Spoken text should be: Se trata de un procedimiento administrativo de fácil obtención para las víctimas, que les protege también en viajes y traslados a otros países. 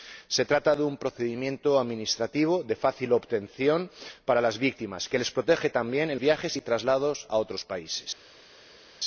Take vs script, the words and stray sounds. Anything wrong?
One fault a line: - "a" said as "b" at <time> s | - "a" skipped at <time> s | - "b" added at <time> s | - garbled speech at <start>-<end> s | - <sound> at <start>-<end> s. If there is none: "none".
none